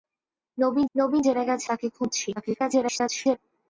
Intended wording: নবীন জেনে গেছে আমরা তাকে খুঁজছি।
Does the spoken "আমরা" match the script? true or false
false